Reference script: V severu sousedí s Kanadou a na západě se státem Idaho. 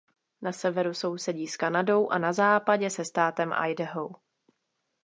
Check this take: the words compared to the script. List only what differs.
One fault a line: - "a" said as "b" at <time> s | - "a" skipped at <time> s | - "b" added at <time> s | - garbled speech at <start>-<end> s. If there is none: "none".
- "V" said as "Na" at 0.4 s